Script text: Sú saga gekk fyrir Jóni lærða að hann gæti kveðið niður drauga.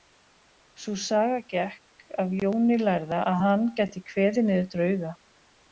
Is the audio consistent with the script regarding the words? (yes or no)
no